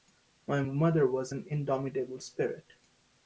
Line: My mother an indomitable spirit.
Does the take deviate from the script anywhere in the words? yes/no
yes